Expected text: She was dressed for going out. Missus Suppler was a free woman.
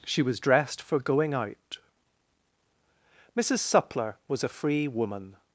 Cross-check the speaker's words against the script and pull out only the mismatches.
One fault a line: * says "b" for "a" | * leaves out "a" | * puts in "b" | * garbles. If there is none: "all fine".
all fine